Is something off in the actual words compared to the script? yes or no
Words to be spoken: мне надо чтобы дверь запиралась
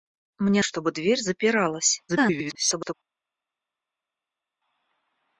yes